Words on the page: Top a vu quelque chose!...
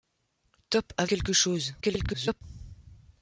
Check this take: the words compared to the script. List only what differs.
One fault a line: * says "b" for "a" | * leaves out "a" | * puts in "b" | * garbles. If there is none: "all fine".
* leaves out "vu"
* garbles